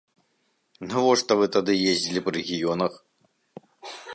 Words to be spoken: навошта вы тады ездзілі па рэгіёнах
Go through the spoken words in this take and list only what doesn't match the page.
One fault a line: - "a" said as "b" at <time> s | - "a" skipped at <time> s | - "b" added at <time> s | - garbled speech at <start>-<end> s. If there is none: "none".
none